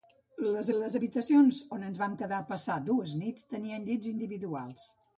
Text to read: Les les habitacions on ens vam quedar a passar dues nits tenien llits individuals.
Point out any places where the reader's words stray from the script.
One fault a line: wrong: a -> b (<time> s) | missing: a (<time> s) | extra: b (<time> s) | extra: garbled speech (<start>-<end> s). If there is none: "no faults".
no faults